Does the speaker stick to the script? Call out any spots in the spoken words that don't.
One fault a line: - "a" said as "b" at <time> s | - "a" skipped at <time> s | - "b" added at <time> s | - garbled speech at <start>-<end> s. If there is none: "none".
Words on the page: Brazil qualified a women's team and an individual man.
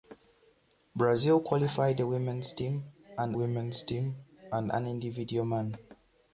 - "women's team and" added at 3.3 s